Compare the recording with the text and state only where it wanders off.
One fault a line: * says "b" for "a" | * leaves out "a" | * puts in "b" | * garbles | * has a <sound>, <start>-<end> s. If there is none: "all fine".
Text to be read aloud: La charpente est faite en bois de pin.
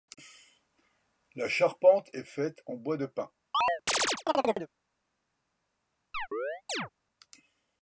* has a chirp, 3.5-4.7 s
* has a chirp, 6.1-6.9 s